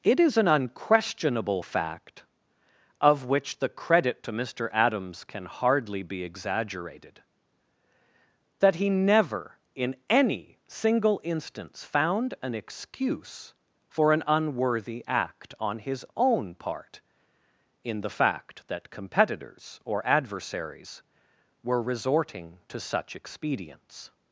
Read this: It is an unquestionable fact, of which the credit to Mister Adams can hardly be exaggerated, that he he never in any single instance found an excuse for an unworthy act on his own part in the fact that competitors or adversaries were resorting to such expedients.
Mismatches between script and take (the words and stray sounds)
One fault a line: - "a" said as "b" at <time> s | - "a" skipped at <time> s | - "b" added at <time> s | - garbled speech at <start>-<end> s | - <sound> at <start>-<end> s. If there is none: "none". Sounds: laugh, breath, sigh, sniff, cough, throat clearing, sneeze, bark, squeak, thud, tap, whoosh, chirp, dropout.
- "he" skipped at 8.9 s